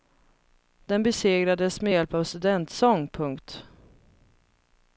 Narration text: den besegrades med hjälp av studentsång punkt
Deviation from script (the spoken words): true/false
false